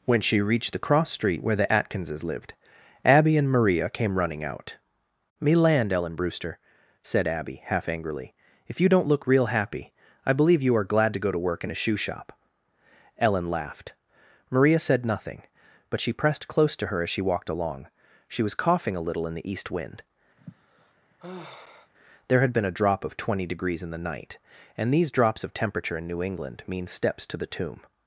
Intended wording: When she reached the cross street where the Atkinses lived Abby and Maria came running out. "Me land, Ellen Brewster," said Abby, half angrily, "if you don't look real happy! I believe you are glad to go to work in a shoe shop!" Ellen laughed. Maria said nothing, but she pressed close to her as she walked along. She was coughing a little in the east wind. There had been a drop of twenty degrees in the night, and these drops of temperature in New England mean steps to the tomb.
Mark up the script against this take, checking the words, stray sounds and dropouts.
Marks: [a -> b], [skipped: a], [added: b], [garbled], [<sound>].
When she reached the cross street where the Atkinses lived Abby and Maria came running out. "Me land, Ellen Brewster," said Abby, half angrily, "if you don't look real happy! I believe you are glad to go to work in a shoe shop!" Ellen laughed. Maria said nothing, but she pressed close to her as she walked along. She was coughing a little in the east wind. [sigh] There had been a drop of twenty degrees in the night, and these drops of temperature in New England mean steps to the tomb.